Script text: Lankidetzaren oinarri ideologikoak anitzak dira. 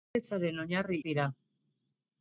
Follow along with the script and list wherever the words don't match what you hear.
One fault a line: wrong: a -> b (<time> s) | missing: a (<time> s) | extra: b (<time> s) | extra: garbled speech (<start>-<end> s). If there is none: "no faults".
missing: ideologikoak anitzak (1.0 s)